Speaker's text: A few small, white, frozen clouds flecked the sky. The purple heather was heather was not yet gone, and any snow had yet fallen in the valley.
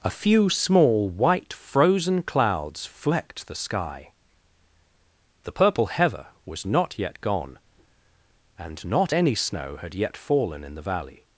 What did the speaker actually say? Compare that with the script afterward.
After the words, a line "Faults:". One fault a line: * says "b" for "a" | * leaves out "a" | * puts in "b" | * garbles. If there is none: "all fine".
A few small, white, frozen clouds flecked the sky. The purple heather was not yet gone, and not any snow had yet fallen in the valley.
Faults:
* leaves out "heather was"
* puts in "not"